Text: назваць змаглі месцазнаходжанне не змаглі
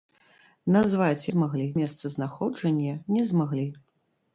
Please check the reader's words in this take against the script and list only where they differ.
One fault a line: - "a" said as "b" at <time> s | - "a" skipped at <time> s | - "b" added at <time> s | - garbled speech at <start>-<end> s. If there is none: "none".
none